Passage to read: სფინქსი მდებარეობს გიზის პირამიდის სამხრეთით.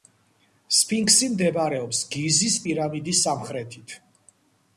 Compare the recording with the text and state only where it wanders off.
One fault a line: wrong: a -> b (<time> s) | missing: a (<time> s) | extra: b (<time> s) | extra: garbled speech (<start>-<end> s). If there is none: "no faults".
no faults